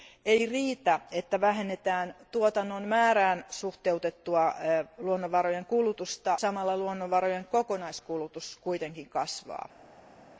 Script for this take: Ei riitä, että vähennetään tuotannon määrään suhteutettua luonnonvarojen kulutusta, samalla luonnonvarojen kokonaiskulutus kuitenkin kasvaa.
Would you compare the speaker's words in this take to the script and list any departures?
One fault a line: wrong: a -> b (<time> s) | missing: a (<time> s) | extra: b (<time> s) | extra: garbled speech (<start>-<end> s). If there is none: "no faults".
no faults